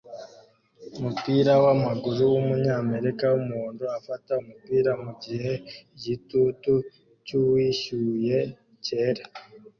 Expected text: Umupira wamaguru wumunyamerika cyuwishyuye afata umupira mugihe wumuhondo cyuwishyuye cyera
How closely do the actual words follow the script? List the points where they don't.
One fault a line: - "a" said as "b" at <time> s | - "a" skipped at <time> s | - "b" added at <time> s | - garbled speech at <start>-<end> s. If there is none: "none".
- "cyuwishyuye" said as "wumuhondo" at 3.3 s
- "wumuhondo" said as "igitutu" at 5.9 s